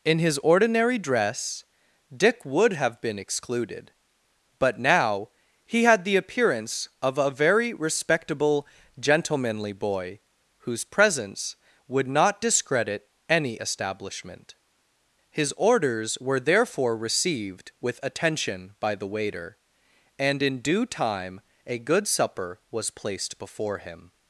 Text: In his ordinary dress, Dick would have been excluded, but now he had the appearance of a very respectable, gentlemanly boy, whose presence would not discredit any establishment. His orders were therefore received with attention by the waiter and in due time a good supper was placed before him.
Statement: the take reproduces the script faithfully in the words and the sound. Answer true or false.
true